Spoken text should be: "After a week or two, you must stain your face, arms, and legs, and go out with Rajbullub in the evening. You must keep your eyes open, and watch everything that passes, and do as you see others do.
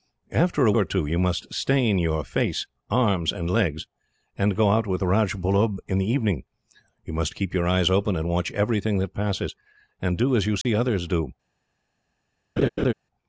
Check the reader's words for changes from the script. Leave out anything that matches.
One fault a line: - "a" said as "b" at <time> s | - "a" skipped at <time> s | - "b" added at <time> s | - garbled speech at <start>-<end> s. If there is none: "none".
- "week" skipped at 0.7 s